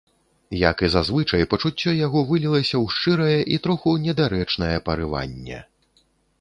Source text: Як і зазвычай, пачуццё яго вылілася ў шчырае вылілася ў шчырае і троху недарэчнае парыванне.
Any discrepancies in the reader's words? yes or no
yes